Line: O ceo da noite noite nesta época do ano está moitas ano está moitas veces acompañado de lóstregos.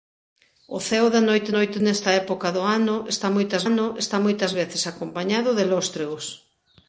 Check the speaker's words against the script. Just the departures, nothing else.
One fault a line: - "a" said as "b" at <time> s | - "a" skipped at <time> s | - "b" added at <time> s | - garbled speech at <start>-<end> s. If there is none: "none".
none